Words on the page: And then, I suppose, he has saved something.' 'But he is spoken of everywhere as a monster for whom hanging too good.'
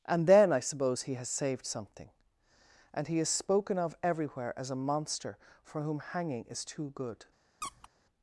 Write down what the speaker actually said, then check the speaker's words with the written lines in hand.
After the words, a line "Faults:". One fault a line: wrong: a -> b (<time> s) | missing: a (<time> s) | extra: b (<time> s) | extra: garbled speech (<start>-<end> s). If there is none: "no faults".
And then, I suppose, he has saved something.' 'And he is spoken of everywhere as a monster for whom hanging is too good.'
Faults:
wrong: But -> And (2.9 s)
extra: is (6.5 s)